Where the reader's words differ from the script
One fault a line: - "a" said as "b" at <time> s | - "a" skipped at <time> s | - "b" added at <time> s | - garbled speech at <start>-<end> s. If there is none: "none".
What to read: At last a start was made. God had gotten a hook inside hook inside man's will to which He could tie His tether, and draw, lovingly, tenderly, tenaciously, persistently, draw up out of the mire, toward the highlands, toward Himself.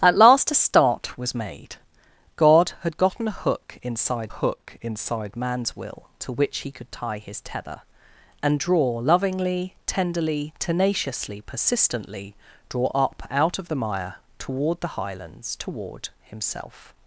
none